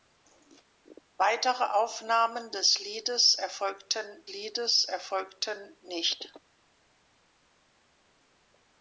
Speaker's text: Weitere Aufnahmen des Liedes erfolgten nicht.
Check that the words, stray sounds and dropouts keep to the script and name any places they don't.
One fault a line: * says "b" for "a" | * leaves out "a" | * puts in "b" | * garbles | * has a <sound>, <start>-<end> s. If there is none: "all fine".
* puts in "Liedes erfolgten"